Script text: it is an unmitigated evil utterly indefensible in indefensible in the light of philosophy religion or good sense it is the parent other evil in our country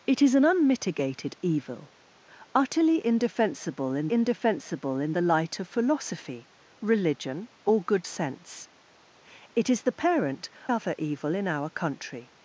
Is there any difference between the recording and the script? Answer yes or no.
no